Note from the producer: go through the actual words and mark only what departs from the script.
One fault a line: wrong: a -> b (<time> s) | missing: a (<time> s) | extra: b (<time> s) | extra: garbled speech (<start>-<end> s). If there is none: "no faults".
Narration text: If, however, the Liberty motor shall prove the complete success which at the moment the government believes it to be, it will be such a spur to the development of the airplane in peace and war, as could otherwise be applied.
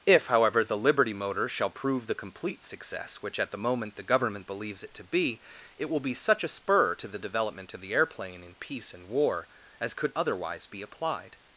no faults